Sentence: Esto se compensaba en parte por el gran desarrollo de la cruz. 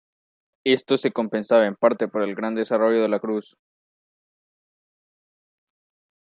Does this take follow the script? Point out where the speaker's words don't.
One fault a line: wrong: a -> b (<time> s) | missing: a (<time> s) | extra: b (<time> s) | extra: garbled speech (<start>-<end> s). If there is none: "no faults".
no faults